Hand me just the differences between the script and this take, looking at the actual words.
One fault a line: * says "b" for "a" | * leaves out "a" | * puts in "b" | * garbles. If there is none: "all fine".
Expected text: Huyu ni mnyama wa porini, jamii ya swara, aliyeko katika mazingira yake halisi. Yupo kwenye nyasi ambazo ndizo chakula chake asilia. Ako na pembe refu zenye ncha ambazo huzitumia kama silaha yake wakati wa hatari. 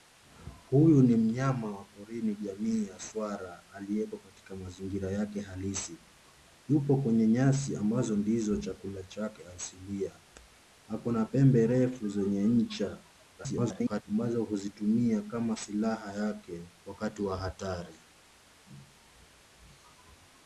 * garbles